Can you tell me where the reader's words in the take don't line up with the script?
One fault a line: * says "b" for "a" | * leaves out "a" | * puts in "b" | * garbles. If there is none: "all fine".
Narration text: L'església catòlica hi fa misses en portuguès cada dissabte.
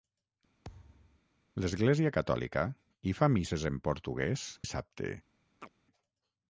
* leaves out "cada"